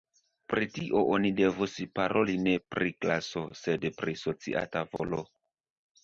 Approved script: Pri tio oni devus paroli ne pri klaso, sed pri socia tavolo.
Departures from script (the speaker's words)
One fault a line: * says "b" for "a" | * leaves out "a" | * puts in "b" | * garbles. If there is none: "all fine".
all fine